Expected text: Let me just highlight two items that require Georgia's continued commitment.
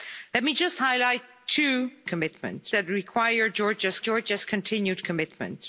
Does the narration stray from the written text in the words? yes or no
yes